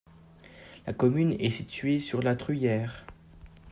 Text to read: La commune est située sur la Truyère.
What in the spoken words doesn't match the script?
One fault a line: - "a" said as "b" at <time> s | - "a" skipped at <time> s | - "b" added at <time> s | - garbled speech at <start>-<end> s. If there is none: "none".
none